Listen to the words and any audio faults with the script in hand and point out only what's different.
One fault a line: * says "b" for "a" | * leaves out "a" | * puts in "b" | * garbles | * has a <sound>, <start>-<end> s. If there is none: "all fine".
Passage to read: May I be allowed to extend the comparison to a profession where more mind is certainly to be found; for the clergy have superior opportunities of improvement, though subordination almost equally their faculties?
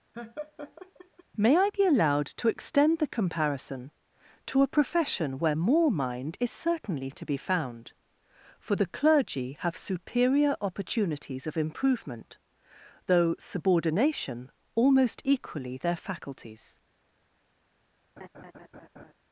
* has a laugh, 0.1-1.2 s
* has a laugh, 18.2-19.1 s